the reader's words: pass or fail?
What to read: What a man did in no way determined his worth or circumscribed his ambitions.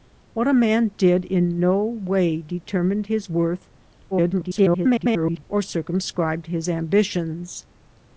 fail